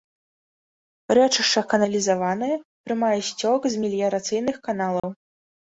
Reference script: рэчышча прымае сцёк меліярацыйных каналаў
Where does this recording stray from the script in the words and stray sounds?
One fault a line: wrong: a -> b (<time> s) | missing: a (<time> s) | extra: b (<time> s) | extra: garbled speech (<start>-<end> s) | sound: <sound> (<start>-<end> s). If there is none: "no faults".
extra: каналізаванае (1.8 s)
extra: з (3.7 s)
sound: dropout (5.0-5.0 s)